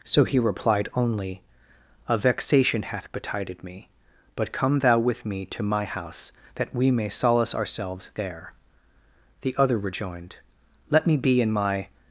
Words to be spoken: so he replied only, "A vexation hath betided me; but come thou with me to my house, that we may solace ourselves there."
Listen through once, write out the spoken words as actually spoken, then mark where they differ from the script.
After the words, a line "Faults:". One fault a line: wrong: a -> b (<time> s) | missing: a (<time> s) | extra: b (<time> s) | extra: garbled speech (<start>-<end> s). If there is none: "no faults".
so he replied only, "A vexation hath betided me; but come thou with me to my house, that we may solace ourselves there." The other rejoined, "Let me be in my
Faults:
extra: The other rejoined Let me be in my (9.4 s)